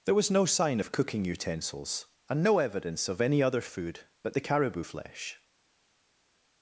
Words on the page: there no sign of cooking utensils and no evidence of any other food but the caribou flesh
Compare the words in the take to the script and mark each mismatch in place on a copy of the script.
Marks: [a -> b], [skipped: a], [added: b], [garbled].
there [added: was] no sign of cooking utensils and no evidence of any other food but the caribou flesh